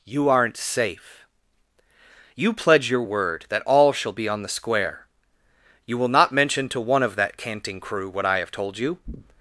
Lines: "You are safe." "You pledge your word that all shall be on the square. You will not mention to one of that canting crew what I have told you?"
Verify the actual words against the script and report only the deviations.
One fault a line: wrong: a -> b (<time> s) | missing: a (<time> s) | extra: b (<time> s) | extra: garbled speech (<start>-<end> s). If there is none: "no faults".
wrong: are -> aren't (0.3 s)